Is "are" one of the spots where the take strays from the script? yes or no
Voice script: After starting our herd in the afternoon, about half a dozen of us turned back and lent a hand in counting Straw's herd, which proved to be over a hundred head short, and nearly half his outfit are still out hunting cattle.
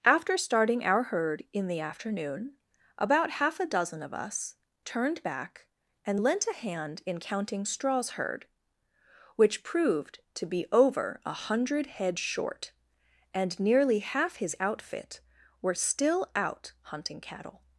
yes